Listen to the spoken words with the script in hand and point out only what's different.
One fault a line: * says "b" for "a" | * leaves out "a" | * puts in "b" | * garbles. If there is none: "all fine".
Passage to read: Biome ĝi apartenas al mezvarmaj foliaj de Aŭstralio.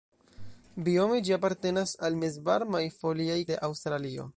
all fine